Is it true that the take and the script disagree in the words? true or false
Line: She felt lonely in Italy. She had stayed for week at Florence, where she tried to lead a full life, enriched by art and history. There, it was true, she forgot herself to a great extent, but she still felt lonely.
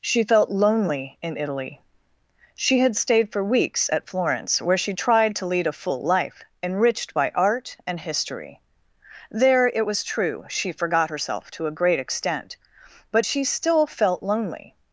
true